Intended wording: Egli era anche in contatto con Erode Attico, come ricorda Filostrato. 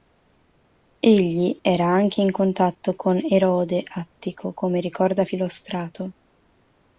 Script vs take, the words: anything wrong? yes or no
no